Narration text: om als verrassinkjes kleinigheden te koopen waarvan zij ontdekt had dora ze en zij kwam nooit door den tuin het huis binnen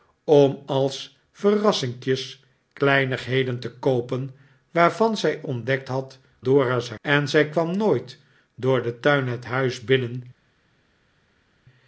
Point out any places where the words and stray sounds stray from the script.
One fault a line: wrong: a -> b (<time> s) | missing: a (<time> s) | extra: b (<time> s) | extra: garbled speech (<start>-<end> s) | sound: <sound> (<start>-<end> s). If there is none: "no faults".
no faults